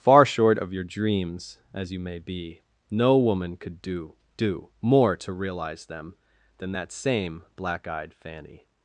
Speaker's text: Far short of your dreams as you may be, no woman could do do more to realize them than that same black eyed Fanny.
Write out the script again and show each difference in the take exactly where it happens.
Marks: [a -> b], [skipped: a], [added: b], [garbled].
Far short of your dreams as you may be, no woman could do do more to realize them than that same black eyed Fanny.